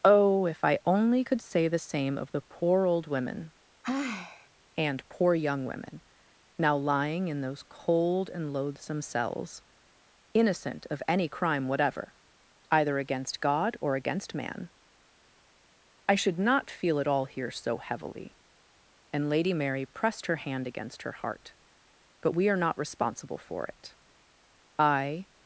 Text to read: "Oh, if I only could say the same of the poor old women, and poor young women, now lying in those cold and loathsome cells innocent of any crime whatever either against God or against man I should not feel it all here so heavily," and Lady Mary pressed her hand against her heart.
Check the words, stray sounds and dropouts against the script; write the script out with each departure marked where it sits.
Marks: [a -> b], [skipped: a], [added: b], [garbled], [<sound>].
"Oh, if I only could say the same of the poor old women, [sigh] and poor young women, now lying in those cold and loathsome cells innocent of any crime whatever either against God or against man I should not feel it all here so heavily," and Lady Mary pressed her hand against her heart. [added: But we are not responsible for it I]